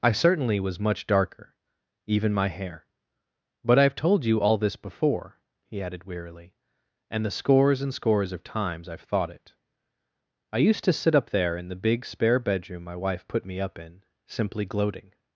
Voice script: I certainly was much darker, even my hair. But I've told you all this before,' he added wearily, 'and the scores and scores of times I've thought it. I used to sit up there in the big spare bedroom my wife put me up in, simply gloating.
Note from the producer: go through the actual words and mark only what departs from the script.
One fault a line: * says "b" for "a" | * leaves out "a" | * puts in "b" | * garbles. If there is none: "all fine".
all fine